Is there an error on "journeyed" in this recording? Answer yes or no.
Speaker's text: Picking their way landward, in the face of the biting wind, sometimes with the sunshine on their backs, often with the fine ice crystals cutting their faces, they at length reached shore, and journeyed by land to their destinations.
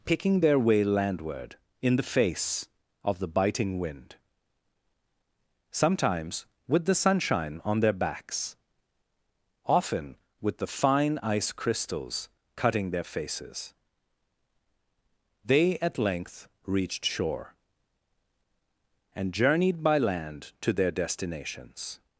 no